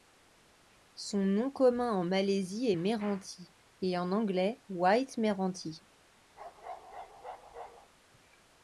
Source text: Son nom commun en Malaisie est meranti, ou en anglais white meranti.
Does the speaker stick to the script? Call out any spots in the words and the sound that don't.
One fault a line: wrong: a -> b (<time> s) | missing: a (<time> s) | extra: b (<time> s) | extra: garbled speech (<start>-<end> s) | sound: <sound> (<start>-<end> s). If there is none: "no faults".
wrong: ou -> et (3.8 s)
sound: bark (6.4-7.9 s)